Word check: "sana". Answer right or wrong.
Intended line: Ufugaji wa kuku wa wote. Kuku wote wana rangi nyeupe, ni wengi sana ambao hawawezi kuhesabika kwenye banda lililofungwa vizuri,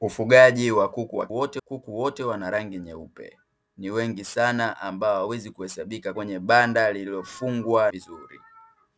right